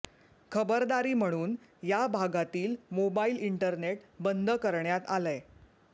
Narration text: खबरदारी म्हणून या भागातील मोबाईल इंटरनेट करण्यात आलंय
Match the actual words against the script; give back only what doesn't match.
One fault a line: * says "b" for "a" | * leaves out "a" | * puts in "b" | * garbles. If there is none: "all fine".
* puts in "बंद"